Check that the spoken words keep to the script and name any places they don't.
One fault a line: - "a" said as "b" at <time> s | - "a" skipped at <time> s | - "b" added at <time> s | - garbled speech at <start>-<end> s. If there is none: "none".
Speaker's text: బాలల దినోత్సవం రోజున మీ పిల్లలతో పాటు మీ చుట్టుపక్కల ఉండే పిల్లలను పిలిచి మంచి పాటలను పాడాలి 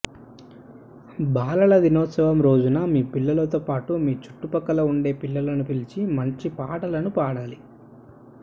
none